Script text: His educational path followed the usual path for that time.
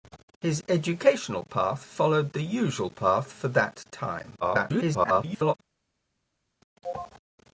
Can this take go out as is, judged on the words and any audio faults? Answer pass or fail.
fail